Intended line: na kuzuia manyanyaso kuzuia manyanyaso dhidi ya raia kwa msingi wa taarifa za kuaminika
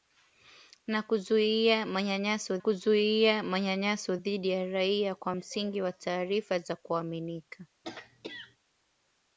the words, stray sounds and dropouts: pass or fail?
fail